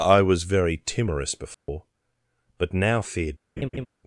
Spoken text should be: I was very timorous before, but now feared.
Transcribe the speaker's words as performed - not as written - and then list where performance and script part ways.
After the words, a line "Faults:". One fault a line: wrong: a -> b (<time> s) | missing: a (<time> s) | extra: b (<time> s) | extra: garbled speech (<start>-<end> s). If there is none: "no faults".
I was very timorous before, but now feared.
Faults:
no faults